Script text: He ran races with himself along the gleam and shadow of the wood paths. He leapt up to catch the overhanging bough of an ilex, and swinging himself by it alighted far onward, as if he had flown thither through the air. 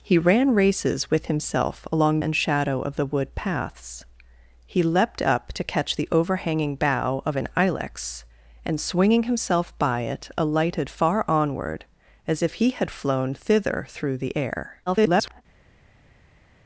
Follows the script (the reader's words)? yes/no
no